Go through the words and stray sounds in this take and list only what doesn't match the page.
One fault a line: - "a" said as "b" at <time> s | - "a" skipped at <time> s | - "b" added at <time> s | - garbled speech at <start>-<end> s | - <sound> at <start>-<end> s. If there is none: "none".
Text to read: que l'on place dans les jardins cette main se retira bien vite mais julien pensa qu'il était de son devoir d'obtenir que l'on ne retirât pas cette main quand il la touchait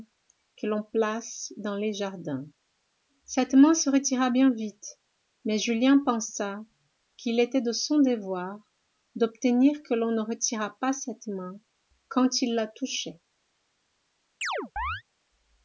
- chirp at 14.4-15.0 s